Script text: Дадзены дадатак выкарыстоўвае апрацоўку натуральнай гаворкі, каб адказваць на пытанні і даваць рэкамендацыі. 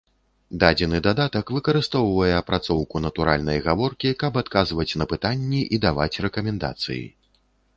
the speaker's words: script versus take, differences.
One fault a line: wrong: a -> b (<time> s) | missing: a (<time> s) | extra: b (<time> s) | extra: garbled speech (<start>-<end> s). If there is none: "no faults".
no faults